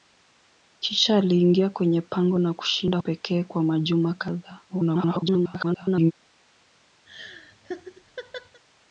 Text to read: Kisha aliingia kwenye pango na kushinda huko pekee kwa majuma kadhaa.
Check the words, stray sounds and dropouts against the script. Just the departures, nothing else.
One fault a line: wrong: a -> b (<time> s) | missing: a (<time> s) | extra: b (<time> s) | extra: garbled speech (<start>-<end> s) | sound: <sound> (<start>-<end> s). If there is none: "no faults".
missing: huko (3.0 s)
extra: garbled speech (4.7-6.1 s)
sound: laugh (7.0-8.6 s)